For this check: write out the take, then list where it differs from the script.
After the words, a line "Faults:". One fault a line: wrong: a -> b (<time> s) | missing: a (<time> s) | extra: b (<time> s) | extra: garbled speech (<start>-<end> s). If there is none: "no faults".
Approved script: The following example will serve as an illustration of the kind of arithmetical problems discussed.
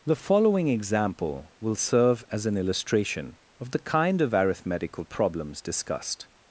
The following example will serve as an illustration of the kind of arithmetical problems discussed.
Faults:
no faults